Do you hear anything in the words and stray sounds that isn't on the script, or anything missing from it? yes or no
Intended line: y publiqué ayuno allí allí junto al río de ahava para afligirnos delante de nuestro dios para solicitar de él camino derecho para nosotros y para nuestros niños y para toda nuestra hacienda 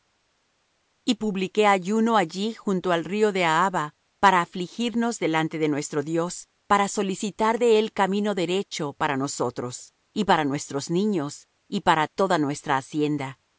yes